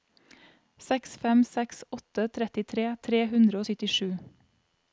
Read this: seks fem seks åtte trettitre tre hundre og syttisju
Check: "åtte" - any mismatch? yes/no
no